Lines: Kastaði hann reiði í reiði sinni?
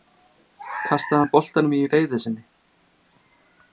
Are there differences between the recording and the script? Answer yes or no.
yes